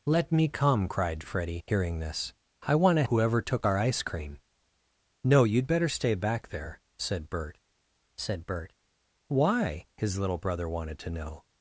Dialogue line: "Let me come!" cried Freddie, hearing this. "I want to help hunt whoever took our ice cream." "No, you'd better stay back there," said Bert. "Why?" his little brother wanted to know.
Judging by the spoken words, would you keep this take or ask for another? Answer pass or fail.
fail